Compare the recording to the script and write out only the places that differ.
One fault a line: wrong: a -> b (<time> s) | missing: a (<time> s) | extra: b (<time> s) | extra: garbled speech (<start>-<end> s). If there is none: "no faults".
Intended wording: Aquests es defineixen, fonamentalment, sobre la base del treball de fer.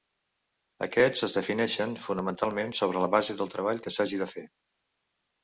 extra: que s'hagi (3.9 s)